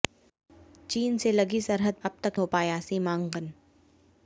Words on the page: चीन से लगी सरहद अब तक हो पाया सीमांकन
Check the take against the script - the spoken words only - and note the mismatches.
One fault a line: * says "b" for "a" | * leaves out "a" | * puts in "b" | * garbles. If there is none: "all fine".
all fine